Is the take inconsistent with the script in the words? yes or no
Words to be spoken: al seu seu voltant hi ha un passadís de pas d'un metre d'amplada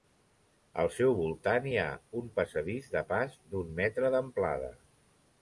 yes